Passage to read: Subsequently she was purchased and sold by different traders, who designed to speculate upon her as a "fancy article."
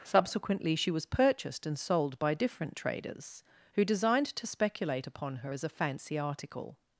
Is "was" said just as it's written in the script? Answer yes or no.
yes